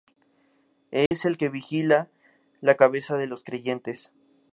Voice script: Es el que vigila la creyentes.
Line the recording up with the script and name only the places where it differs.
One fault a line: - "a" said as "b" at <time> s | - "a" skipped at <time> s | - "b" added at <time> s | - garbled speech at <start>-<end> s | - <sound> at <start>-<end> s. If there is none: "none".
- dropout at 1.1-1.1 s
- "cabeza de los" added at 2.8 s